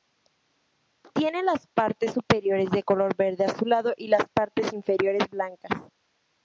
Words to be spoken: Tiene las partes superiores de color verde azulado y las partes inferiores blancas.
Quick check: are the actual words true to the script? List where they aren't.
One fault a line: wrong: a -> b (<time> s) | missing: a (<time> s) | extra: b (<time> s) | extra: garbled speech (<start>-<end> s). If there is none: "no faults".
no faults